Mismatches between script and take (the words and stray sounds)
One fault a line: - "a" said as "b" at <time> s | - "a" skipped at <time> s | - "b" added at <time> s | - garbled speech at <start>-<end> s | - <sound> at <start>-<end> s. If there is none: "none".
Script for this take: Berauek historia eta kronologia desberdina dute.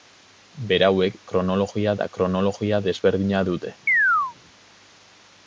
- "historia" said as "kronologia" at 1.3 s
- chirp at 3.9-4.4 s